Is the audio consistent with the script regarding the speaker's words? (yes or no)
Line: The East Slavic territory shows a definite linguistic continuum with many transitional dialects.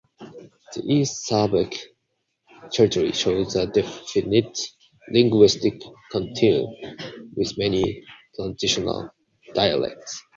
yes